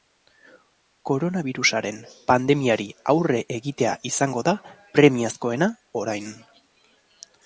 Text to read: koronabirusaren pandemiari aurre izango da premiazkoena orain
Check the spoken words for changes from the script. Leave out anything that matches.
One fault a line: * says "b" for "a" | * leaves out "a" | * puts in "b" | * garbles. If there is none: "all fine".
* puts in "egitea"